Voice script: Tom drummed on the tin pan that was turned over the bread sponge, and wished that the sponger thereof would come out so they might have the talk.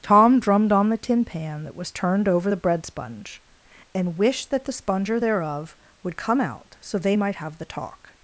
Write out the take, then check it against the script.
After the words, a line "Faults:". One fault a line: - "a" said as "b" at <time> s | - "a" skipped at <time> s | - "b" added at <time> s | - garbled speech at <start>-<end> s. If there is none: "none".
Tom drummed on the tin pan that was turned over the bread sponge, and wished that the sponger thereof would come out so they might have the talk.
Faults:
none